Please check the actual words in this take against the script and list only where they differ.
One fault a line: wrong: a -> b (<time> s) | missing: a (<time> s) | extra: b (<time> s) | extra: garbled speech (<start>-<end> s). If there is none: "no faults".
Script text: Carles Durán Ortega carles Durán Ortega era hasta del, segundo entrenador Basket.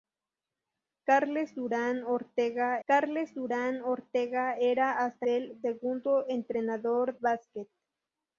no faults